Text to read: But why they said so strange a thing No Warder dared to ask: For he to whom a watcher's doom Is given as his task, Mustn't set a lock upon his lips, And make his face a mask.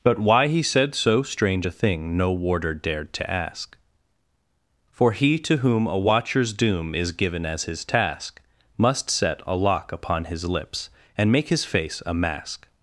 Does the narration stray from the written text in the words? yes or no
yes